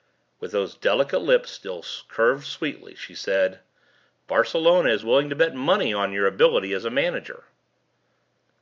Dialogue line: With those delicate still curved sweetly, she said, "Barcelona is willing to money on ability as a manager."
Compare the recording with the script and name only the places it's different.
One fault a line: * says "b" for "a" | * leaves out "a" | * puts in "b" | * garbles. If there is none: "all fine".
* puts in "lips"
* puts in "bet"
* puts in "your"